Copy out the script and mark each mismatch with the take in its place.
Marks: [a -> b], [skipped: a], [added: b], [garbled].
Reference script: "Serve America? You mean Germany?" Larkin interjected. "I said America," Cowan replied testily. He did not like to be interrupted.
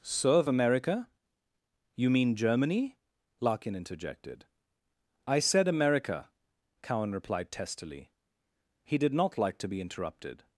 "Serve America? You mean Germany?" Larkin interjected. "I said America," Cowan replied testily. He did not like to be interrupted.